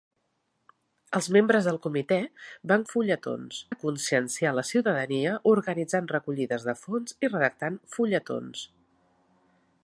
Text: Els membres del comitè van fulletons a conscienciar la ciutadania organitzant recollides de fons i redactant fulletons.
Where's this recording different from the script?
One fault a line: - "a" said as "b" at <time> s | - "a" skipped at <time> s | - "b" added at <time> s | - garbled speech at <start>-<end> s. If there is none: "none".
none